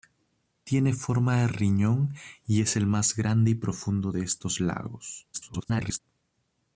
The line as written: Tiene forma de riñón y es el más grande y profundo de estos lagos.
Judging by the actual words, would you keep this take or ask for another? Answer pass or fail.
fail